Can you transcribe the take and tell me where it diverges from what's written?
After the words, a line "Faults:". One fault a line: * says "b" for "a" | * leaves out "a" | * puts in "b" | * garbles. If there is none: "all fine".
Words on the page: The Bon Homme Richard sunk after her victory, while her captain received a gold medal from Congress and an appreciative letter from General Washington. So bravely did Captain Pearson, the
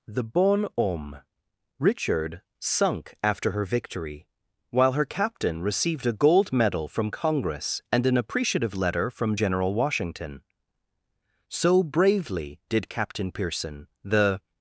The Bon Homme Richard sunk after her victory, while her captain received a gold medal from Congress and an appreciative letter from General Washington. So bravely did Captain Pearson, the
Faults:
all fine